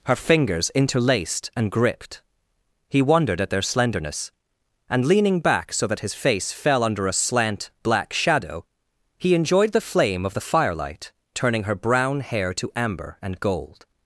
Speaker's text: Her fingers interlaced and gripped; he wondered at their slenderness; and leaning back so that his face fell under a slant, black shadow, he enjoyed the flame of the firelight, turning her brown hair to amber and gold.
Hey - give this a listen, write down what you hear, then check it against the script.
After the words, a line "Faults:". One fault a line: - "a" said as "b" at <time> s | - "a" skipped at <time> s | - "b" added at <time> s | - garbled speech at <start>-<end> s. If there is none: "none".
Her fingers interlaced and gripped; he wondered at their slenderness; and leaning back so that his face fell under a slant, black shadow, he enjoyed the flame of the firelight, turning her brown hair to amber and gold.
Faults:
none